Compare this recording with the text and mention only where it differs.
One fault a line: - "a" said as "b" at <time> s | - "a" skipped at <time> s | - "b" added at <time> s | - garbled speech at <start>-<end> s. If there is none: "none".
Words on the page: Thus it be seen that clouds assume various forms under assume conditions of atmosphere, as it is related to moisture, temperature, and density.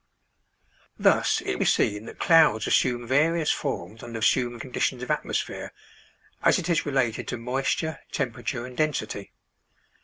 none